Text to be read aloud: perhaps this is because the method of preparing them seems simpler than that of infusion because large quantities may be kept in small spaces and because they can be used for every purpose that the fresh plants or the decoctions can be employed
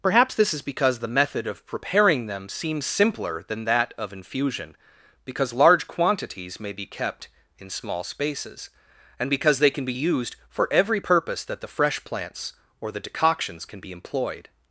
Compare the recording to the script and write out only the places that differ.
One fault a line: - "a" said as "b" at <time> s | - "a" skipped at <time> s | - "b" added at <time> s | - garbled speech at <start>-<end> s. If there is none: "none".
none